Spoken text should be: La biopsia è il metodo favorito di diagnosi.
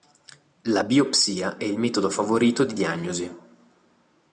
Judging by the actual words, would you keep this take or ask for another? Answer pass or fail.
pass